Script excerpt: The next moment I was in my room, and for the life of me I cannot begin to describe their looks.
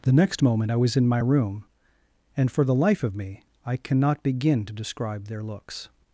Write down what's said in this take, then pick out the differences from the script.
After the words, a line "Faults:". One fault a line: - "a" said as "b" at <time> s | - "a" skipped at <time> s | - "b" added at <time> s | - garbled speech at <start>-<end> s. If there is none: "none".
The next moment I was in my room, and for the life of me I cannot begin to describe their looks.
Faults:
none